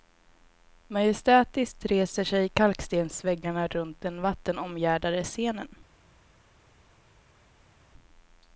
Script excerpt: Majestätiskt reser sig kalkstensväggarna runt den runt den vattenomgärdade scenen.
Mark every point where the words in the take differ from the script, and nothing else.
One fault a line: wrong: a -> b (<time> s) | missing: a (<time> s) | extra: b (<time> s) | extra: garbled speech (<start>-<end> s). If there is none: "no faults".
missing: runt den (4.2 s)